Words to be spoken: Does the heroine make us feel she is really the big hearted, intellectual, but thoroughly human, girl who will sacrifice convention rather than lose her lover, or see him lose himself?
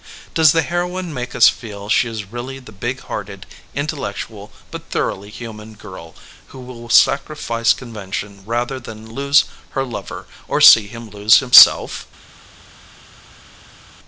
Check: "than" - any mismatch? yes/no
no